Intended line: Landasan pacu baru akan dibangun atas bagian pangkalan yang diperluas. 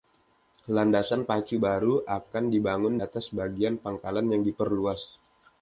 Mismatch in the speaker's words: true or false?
false